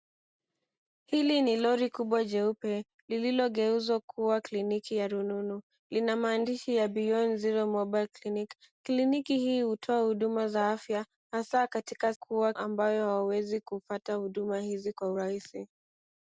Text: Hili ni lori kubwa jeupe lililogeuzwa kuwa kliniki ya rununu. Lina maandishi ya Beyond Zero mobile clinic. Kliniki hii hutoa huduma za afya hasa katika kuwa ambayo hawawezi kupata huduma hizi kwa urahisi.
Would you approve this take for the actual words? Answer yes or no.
yes